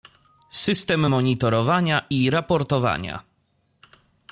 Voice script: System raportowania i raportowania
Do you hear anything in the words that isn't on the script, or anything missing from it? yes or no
yes